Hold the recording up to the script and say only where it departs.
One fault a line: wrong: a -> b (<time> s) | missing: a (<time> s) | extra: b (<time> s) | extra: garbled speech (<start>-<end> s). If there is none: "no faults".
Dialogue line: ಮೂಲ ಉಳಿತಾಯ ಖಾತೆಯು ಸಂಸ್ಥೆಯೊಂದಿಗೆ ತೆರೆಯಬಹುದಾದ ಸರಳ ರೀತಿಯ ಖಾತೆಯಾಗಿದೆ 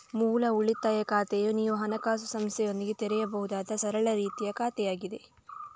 extra: ನೀವು ಹಣಕಾಸು (1.5 s)